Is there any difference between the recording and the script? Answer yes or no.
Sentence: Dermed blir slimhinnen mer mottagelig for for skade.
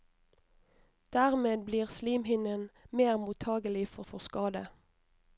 no